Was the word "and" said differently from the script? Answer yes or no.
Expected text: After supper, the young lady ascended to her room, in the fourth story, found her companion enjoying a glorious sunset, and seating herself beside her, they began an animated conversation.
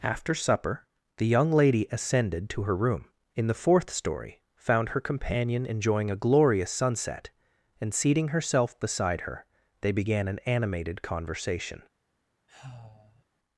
no